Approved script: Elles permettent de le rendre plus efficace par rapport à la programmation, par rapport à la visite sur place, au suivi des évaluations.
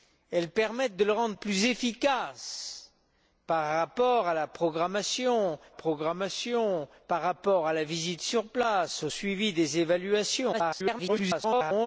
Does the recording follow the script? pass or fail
fail